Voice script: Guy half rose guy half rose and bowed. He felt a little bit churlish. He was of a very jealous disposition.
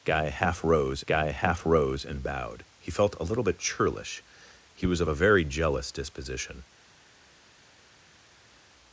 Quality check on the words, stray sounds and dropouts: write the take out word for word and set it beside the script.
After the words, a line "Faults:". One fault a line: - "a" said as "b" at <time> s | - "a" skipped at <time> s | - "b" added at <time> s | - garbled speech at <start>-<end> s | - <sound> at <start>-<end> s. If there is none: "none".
Guy half rose guy half rose and bowed. He felt a little bit churlish. He was of a very jealous disposition.
Faults:
none